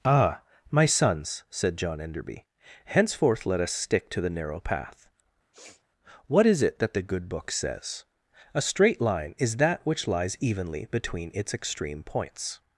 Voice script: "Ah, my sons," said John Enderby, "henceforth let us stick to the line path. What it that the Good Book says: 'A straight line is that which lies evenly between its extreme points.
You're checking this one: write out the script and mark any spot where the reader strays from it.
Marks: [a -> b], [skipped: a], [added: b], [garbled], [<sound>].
"Ah, my sons," said John Enderby, "henceforth let us stick to the [line -> narrow] path. [sniff] What [added: is] it that the Good Book says: 'A straight line is that which lies evenly between its extreme points.